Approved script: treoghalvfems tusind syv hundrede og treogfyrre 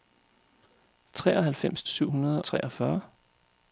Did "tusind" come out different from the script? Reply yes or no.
yes